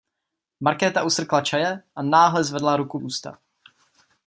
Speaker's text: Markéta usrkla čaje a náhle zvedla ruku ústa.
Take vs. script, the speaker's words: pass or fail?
pass